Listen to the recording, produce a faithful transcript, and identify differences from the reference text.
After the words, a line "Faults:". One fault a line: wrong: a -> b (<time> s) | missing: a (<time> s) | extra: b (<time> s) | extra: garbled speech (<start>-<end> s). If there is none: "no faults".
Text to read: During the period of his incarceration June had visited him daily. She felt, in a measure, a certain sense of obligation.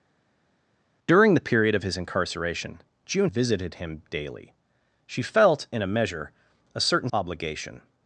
During the period of his incarceration June visited him daily. She felt, in a measure, a certain obligation.
Faults:
missing: had (3.3 s)
missing: sense of (7.1 s)